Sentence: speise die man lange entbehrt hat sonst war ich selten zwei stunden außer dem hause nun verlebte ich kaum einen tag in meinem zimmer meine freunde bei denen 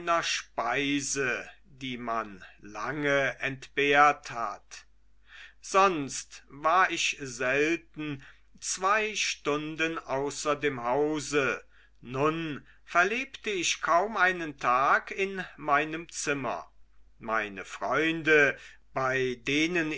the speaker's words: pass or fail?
pass